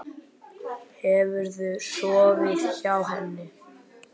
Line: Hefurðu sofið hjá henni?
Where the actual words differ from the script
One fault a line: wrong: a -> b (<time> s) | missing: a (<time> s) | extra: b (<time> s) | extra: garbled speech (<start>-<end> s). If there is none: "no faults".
no faults